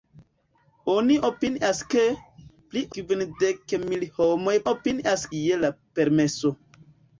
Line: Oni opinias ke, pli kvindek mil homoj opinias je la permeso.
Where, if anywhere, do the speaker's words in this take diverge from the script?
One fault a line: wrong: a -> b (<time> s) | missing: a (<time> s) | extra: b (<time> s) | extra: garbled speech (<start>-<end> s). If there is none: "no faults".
no faults